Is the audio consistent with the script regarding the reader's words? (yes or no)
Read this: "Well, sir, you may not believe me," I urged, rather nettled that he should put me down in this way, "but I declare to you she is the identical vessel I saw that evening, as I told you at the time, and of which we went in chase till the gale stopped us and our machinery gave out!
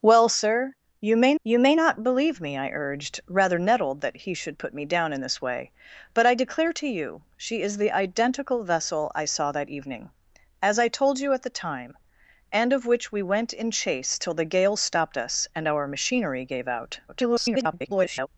no